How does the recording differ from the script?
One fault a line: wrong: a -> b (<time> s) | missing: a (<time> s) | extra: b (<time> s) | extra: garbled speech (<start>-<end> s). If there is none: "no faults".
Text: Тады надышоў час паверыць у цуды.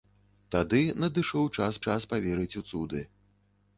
extra: час (1.9 s)